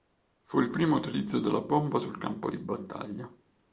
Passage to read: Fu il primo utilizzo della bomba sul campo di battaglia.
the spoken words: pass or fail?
pass